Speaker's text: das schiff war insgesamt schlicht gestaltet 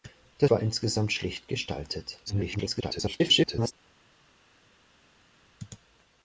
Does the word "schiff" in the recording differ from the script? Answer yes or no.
yes